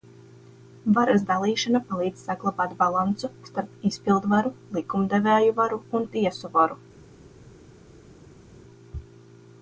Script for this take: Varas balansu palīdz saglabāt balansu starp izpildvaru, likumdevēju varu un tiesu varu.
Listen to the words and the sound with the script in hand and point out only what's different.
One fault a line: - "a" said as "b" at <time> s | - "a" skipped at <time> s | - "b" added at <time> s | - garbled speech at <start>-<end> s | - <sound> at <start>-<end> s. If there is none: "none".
- "balansu" said as "dalīšana" at 1.3 s